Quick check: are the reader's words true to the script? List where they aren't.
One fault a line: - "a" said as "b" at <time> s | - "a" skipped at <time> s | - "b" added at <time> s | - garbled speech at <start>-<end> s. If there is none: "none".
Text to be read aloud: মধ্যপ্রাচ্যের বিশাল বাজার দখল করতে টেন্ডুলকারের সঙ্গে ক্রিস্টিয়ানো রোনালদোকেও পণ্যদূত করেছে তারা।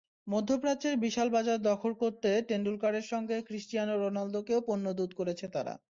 none